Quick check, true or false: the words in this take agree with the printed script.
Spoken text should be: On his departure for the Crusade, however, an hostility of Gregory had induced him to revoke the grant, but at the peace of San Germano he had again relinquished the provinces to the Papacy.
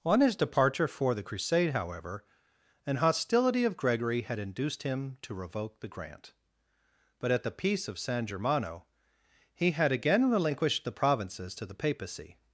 true